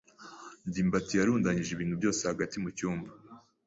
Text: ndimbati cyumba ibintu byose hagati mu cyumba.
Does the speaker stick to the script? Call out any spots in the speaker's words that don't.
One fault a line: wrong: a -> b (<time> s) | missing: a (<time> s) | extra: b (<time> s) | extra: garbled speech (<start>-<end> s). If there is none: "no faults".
wrong: cyumba -> yarundanyije (1.1 s)